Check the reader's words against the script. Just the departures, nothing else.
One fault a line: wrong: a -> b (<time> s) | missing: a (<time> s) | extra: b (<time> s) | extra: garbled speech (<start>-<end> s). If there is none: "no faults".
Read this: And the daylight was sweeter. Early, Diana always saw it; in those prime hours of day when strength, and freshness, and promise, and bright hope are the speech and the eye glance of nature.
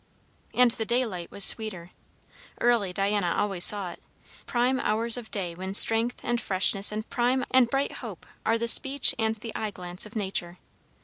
missing: in those (4.0 s)
wrong: promise -> prime (7.0 s)